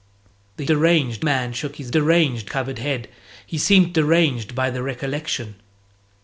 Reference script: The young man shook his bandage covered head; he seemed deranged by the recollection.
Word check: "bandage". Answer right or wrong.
wrong